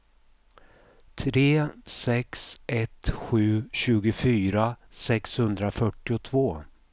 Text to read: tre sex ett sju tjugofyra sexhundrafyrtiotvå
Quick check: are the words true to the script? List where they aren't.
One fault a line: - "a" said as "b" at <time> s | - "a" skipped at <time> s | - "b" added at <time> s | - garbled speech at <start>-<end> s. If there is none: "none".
none